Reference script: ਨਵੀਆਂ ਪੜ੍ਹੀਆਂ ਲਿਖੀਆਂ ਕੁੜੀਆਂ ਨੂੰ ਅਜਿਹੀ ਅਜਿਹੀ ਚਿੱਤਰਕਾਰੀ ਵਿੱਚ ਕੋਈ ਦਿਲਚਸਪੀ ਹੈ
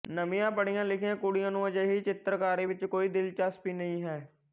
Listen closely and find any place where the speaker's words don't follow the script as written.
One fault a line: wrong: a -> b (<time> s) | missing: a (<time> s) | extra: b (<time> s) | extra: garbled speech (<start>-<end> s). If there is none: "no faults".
missing: ਅਜਿਹੀ (2.0 s)
extra: ਨਹੀਂ (3.7 s)